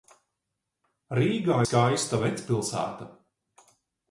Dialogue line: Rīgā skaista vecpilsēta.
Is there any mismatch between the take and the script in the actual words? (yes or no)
no